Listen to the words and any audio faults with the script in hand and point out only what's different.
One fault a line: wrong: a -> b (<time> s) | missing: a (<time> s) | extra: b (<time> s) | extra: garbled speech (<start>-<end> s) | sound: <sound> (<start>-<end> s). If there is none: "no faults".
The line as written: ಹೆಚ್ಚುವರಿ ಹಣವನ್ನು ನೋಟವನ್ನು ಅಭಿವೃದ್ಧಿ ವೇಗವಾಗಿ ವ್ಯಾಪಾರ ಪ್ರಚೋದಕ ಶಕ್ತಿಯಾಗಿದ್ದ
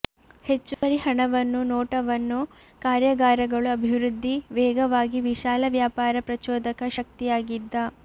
sound: dropout (0.7-0.8 s)
extra: ಕಾರ್ಯಾಗಾರಗಳು (2.8 s)
extra: ವಿಶಾಲ (5.3 s)